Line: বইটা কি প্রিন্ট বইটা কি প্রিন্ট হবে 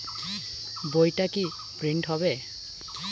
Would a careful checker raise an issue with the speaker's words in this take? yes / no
yes